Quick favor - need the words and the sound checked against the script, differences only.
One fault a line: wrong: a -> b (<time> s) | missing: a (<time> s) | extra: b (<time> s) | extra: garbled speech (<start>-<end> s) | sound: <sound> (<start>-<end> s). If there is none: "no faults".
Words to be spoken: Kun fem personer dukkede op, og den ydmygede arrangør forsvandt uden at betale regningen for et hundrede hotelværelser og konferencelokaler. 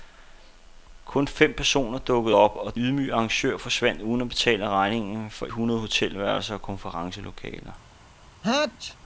missing: den (2.8 s)
missing: et (5.5 s)
sound: sneeze (8.4-9.0 s)